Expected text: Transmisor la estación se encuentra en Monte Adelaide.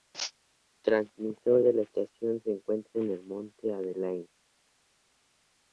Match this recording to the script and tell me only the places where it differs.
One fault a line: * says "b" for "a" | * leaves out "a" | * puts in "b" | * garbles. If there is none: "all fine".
* puts in "de"
* puts in "el"